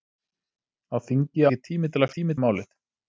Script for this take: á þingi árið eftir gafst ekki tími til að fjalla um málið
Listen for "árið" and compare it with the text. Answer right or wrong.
wrong